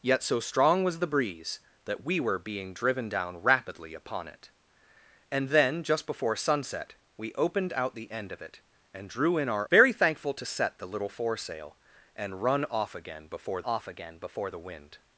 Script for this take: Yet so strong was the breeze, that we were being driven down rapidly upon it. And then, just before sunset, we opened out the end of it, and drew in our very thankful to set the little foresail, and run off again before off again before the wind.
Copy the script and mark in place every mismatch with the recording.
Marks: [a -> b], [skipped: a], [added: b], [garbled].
Yet so strong was the breeze, that we were being driven down rapidly upon it. And then, just before sunset, we opened out the end of it, and drew in our very thankful to set the little foresail, and run off again before off again before the wind.